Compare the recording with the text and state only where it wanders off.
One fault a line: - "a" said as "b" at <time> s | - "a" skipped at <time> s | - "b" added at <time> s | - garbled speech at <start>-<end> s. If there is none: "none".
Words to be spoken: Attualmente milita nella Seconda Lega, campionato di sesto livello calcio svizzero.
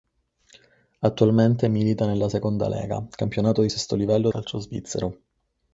none